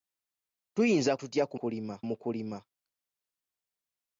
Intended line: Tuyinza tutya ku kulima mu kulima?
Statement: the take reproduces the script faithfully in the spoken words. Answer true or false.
true